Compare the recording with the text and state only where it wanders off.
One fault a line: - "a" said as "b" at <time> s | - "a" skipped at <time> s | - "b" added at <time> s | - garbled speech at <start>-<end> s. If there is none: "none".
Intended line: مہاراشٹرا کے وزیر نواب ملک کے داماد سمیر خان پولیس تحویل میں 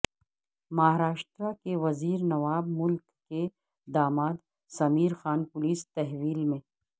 none